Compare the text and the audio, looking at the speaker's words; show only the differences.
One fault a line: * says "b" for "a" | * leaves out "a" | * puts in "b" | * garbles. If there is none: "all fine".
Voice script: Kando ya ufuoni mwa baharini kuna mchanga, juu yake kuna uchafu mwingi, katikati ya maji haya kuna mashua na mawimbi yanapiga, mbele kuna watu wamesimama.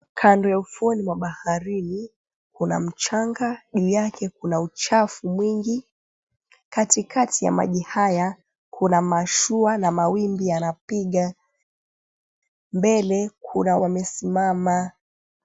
* leaves out "watu"